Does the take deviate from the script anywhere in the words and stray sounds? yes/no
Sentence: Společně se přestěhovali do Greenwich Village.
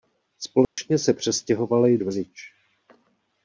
yes